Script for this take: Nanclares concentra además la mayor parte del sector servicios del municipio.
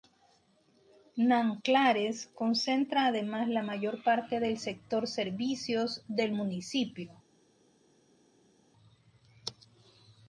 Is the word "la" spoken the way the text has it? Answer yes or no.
yes